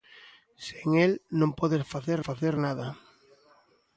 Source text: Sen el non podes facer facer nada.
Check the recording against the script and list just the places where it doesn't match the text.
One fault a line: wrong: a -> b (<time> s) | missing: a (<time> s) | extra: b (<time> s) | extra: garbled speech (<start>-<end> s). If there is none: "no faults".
no faults